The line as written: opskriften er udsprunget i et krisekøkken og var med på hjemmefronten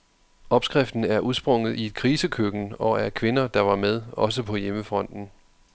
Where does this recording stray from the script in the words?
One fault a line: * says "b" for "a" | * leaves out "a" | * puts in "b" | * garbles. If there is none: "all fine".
* puts in "af kvinder der"
* puts in "også"